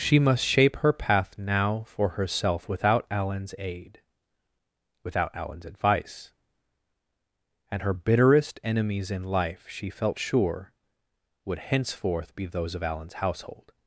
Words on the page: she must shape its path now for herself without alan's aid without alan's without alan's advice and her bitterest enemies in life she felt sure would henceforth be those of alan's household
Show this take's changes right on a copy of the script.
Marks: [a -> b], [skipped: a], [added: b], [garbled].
she must shape [its -> her] path now for herself without alan's aid without alan's [skipped: without alan's] advice and her bitterest enemies in life she felt sure would henceforth be those of alan's household